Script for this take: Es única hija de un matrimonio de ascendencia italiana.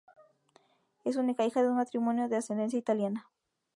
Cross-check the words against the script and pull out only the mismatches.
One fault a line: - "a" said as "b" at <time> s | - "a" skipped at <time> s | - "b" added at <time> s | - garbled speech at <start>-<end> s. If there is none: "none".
none